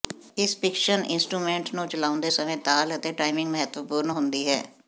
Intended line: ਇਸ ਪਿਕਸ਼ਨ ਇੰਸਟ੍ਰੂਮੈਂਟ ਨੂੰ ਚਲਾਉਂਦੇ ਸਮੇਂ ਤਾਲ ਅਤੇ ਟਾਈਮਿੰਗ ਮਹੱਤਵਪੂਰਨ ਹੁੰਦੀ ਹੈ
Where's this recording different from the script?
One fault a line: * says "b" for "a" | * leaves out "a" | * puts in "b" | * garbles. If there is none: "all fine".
all fine